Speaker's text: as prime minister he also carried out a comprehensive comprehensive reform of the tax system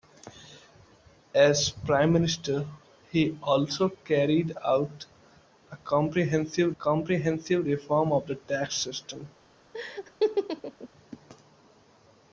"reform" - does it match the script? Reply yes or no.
yes